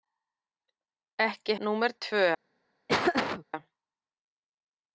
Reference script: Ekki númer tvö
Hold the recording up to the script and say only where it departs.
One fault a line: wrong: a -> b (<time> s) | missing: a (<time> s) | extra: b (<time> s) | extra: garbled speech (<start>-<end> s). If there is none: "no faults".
no faults